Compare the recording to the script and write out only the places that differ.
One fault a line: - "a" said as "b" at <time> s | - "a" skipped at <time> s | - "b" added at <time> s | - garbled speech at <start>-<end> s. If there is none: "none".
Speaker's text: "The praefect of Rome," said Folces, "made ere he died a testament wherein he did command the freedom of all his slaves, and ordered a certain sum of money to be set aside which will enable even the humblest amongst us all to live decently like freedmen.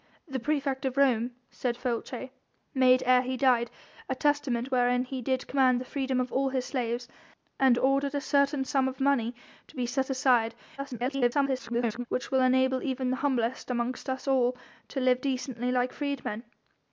- garbled speech at 10.8-12.1 s